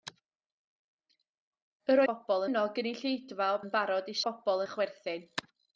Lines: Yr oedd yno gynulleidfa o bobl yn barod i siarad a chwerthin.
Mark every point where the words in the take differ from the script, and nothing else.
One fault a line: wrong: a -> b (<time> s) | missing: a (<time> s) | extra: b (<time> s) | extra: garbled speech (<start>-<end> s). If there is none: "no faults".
wrong: oedd -> bobl (2.1 s)
missing: bobl (3.6 s)
wrong: siarad -> bobl (4.3 s)